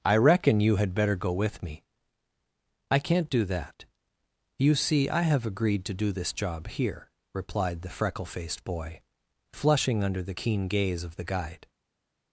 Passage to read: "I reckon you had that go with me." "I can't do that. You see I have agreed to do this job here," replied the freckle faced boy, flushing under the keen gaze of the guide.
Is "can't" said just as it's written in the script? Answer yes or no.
yes